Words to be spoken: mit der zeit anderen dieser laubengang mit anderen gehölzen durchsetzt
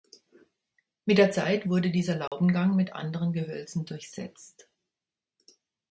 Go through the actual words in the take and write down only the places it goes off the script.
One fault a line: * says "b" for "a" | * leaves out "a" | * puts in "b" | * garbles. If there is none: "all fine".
* says "wurde" for "anderen"